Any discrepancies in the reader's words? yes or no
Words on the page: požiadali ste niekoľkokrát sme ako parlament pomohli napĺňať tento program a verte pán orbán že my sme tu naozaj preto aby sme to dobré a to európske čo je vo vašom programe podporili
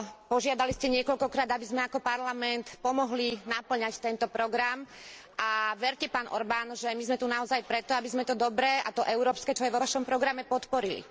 yes